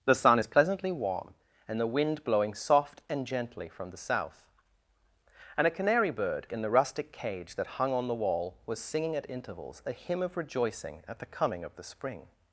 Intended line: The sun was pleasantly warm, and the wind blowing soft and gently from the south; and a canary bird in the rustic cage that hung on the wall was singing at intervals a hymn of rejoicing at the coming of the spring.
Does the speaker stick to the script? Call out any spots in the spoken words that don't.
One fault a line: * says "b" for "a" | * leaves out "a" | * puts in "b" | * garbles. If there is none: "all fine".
* says "is" for "was"